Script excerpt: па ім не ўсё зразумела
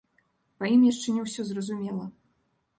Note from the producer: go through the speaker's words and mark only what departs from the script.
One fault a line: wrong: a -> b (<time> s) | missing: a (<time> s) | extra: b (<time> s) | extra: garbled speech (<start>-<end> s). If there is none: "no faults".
extra: яшчэ (0.9 s)